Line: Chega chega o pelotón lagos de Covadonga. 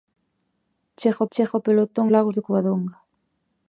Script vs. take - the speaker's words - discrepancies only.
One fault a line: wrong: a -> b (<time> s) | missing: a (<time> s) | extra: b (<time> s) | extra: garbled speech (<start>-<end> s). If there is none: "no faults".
no faults